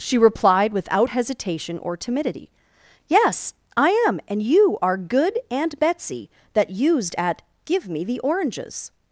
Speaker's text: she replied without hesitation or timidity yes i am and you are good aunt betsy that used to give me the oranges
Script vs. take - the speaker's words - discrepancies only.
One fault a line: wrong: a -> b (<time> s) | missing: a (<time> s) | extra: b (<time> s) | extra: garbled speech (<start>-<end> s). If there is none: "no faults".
wrong: to -> at (7.2 s)